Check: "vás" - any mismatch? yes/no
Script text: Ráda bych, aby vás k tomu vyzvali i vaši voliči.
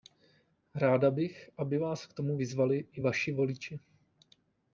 no